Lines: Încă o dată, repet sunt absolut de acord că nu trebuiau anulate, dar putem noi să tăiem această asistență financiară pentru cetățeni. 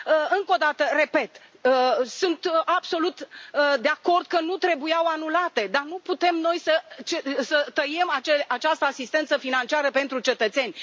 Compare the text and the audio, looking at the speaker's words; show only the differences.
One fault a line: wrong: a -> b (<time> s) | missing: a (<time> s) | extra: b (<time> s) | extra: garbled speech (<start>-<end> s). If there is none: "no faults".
extra: nu (5.8 s)